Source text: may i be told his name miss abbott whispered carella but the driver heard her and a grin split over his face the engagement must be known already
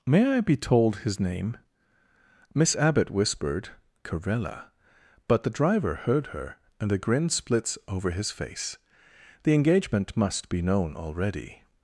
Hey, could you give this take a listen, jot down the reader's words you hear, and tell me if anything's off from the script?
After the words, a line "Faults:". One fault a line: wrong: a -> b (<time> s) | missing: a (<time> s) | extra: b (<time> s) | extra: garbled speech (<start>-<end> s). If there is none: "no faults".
may i be told his name miss abbott whispered carella but the driver heard her and a grin splits over his face the engagement must be known already
Faults:
wrong: split -> splits (7.3 s)